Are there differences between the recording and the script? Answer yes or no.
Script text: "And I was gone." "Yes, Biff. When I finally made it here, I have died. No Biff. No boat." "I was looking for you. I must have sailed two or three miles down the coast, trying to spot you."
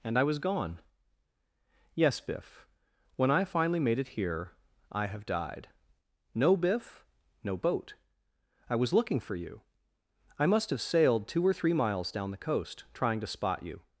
no